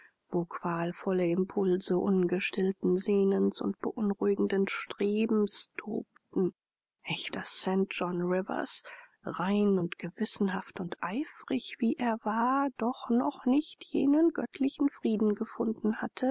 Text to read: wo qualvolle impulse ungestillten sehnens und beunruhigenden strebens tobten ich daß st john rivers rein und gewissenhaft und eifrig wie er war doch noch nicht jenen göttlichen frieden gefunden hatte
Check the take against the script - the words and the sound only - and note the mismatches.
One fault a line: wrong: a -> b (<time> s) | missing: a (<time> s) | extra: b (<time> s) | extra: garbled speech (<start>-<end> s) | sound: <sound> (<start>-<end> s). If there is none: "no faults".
no faults